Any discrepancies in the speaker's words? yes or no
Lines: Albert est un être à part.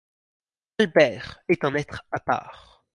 no